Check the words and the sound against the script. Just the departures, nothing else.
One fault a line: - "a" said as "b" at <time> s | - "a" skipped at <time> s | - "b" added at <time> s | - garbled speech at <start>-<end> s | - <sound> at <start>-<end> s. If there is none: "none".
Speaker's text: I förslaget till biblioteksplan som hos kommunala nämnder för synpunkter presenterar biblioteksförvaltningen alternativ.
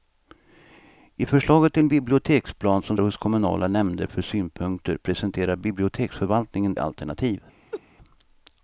- laugh at 7.7-7.8 s